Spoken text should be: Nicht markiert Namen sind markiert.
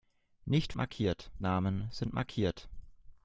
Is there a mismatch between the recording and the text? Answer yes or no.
no